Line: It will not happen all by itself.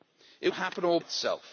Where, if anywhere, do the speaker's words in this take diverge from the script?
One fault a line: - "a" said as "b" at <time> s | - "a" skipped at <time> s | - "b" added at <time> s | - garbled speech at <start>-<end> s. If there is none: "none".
- "will not" skipped at 0.5 s
- "by" skipped at 1.0 s